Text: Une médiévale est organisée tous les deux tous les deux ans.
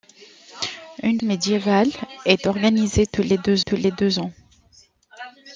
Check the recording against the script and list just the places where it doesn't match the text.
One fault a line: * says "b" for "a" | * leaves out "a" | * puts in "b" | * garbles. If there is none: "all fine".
all fine